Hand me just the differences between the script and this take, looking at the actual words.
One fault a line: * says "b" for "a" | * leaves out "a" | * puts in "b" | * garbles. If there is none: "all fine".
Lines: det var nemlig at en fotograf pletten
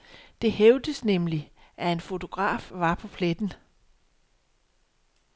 * says "hævdes" for "var"
* puts in "var på"